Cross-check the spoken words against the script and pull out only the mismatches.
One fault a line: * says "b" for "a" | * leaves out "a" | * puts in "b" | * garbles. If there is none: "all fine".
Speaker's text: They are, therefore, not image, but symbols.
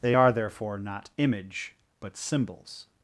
all fine